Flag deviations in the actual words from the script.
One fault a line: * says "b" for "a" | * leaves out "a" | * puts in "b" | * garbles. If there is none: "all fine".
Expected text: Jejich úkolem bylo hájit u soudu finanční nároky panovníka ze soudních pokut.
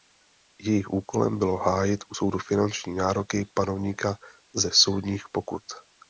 all fine